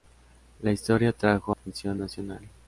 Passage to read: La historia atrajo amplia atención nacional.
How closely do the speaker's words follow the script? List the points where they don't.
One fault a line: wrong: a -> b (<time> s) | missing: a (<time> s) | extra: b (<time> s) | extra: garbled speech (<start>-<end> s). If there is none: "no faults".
missing: amplia (1.6 s)